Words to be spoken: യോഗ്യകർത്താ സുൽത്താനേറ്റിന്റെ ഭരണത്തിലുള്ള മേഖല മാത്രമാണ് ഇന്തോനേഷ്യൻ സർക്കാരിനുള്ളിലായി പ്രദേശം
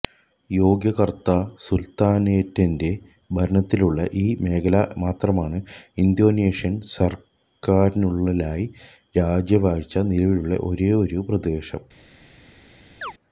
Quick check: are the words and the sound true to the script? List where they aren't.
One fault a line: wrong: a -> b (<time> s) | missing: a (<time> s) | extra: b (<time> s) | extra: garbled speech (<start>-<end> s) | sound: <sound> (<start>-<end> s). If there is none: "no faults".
extra: ഈ (4.2 s)
extra: രാജവാഴ്ച നിലവിലുള്ള ഒരേയൊരു (9.2 s)
sound: chirp (13.0-13.1 s)